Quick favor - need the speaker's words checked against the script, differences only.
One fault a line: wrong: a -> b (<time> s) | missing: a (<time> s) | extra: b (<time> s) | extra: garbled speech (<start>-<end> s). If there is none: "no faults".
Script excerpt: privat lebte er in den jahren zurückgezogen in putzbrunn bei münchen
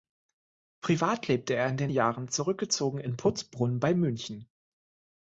no faults